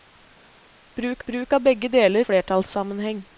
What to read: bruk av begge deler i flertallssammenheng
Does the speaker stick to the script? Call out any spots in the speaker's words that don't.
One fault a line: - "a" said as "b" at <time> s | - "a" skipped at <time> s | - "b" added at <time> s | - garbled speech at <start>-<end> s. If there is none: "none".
- "bruk" added at 1.3 s
- "i" skipped at 2.3 s